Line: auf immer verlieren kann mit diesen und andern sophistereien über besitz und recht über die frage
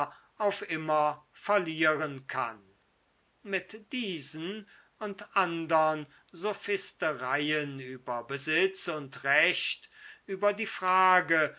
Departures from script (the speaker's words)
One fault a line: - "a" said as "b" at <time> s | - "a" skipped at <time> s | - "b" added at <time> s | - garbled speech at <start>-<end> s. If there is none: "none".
none